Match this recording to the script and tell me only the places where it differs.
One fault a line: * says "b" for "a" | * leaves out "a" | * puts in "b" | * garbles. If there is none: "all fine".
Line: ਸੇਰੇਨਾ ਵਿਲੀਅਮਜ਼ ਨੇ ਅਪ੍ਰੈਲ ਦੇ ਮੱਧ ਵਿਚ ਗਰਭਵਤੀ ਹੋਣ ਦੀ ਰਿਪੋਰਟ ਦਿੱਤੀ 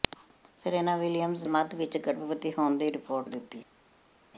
* leaves out "ਨੇ ਅਪ੍ਰੈਲ ਦੇ"